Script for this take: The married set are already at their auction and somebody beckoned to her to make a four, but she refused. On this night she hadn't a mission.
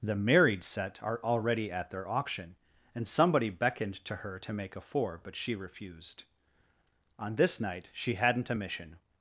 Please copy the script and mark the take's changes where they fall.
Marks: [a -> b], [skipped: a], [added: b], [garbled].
The married set are already at their auction and somebody beckoned to her to make a four, but she refused. On this night she hadn't a mission.